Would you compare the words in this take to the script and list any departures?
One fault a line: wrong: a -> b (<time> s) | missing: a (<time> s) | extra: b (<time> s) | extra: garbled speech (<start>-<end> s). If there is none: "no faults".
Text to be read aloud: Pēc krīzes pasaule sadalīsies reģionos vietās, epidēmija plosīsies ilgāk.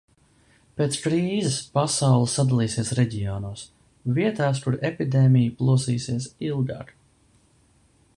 extra: kur (4.7 s)